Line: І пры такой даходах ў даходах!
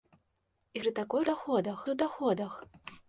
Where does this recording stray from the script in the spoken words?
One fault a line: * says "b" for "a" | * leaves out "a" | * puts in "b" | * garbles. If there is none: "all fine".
all fine